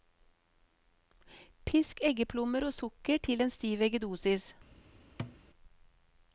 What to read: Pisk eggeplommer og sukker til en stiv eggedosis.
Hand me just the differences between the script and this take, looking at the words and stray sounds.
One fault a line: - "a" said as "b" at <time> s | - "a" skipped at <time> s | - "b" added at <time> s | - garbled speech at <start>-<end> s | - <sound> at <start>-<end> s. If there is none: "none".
- thud at 5.2-5.4 s